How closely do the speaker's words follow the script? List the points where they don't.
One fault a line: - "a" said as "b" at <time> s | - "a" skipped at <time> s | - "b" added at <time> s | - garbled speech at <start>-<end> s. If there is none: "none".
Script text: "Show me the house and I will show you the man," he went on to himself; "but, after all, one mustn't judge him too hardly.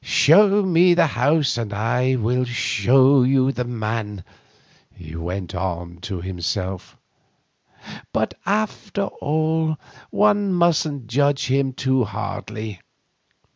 none